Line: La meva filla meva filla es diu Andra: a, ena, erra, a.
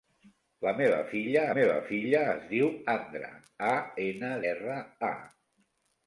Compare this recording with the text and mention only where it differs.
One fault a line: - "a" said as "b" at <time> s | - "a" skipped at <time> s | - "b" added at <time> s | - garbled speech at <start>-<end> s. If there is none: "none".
none